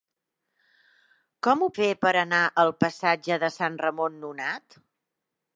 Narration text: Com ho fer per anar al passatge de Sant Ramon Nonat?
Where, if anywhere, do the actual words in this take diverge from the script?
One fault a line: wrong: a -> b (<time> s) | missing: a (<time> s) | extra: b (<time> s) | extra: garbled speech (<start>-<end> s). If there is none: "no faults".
no faults